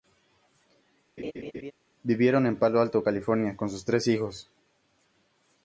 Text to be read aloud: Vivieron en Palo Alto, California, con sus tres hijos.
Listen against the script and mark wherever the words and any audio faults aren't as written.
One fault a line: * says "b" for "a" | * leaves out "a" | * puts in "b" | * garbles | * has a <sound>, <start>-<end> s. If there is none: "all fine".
* has a laugh, 1.2-1.7 s